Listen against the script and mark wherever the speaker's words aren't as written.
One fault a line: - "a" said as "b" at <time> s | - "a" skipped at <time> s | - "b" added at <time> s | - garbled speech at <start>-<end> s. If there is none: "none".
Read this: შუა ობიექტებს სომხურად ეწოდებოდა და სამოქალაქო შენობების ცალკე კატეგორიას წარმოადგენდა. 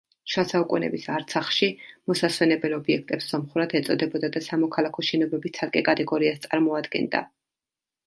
- "საუკუნეების არცახში მოსასვენებელ" added at 0.5 s